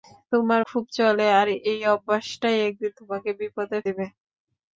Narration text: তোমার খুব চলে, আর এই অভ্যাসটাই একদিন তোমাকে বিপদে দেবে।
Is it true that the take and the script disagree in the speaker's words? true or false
false